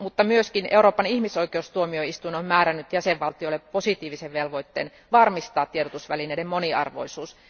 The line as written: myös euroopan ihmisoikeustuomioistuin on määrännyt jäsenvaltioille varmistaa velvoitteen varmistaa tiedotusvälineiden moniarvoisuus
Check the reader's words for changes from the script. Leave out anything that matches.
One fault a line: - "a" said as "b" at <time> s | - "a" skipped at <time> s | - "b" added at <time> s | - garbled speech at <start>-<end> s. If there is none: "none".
- "varmistaa" said as "positiivisen" at 3.6 s